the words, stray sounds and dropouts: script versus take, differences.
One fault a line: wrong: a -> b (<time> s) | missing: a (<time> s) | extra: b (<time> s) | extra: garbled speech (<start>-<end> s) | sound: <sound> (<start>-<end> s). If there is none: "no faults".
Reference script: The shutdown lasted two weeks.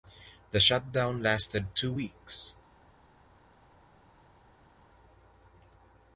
no faults